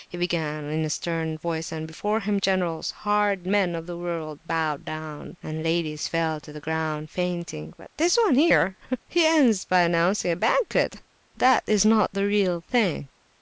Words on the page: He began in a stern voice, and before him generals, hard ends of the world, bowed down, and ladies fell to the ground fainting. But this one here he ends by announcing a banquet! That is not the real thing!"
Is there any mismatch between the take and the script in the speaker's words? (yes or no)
yes